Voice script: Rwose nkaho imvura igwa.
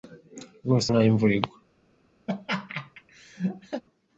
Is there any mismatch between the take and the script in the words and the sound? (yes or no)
yes